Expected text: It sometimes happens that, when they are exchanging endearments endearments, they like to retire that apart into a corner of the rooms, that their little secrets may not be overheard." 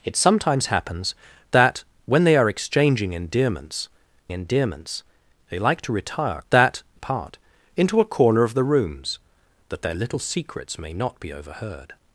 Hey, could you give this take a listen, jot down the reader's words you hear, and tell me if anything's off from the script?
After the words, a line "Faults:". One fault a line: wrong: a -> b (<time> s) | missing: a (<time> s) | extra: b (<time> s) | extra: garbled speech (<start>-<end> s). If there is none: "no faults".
It sometimes happens that, when they are exchanging endearments endearments, they like to retire that apart into a corner of the rooms, that their little secrets may not be overheard."
Faults:
no faults